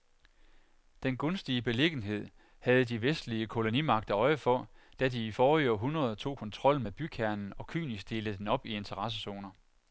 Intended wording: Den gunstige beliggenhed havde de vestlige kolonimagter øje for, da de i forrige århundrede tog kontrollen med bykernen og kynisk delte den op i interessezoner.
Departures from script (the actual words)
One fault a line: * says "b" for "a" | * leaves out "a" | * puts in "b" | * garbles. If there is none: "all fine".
all fine